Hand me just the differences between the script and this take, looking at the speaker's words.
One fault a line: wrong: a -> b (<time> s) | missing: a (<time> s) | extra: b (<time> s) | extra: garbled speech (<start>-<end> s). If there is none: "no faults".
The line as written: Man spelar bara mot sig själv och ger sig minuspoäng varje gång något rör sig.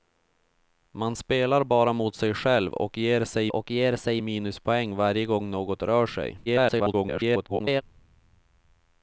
extra: och ger sig (3.5 s)
extra: garbled speech (6.5-7.8 s)